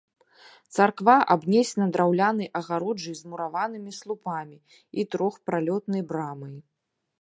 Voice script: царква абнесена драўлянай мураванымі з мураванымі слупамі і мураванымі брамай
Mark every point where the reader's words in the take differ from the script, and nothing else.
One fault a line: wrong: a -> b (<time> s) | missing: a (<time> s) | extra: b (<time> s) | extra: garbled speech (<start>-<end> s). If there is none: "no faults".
wrong: мураванымі -> агароджай (2.6 s)
wrong: мураванымі -> трохпралётнай (5.2 s)